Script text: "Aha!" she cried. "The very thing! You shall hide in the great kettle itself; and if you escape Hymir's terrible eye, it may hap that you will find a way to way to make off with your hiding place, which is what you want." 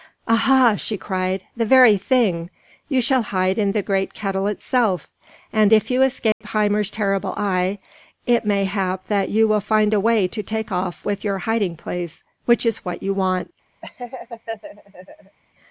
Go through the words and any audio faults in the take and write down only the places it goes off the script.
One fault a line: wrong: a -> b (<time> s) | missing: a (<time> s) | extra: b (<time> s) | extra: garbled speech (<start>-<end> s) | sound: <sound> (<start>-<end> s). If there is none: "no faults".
sound: dropout (6.3-6.4 s)
missing: way to (10.4 s)
sound: laugh (13.8-15.4 s)